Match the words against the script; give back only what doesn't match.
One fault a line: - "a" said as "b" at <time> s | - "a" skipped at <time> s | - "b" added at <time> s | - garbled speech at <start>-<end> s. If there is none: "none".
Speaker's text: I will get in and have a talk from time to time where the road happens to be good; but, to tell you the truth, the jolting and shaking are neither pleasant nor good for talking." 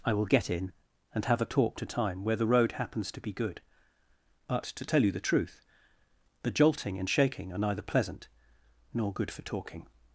- "from time" skipped at 1.8 s